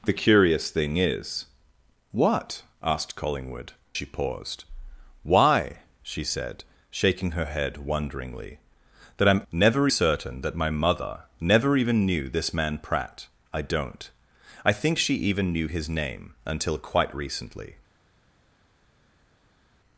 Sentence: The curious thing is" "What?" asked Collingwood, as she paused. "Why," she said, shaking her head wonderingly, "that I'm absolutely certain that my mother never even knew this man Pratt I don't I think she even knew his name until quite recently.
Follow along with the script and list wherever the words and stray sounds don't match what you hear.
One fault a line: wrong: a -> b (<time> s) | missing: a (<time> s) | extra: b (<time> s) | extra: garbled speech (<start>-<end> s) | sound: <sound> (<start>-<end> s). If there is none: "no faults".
missing: as (3.7 s)
wrong: absolutely -> never (9.5 s)